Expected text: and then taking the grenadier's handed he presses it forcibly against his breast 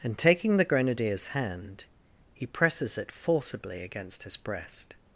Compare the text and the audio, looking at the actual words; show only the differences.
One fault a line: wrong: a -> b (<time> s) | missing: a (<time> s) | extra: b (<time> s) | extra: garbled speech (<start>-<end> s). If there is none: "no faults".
missing: then (0.2 s)
wrong: handed -> hand (1.3 s)